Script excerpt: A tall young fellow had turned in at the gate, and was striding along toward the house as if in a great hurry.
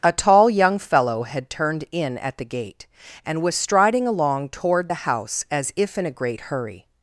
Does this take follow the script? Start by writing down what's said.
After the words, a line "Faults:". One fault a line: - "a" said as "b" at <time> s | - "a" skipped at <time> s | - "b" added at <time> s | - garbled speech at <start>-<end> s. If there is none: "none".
A tall young fellow had turned in at the gate, and was striding along toward the house as if in a great hurry.
Faults:
none